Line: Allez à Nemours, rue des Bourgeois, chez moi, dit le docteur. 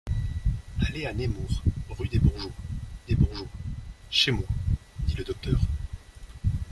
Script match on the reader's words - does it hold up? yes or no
no